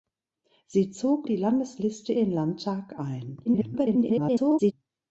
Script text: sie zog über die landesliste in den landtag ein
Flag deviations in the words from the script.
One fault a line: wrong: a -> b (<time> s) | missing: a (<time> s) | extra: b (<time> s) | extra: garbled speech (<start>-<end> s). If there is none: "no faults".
missing: über (1.3 s)
missing: in (2.1 s)
extra: garbled speech (3.4-4.7 s)